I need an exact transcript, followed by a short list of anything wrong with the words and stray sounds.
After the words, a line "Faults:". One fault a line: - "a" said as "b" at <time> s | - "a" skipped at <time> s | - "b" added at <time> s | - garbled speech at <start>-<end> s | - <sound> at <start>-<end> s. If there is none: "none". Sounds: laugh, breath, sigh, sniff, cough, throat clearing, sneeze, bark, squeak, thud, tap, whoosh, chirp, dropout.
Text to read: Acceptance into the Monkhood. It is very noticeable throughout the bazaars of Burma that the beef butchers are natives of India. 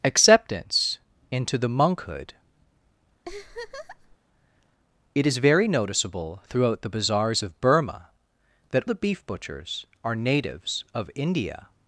Acceptance into the Monkhood. It is very noticeable throughout the bazaars of Burma that the beef butchers are natives of India.
Faults:
- laugh at 3.2-4.2 s